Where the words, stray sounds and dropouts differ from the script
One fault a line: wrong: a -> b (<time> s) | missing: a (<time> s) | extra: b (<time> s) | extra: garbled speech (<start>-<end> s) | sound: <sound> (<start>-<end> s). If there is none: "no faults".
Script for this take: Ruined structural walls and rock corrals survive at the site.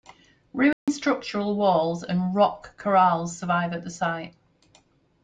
sound: dropout (0.7-0.9 s)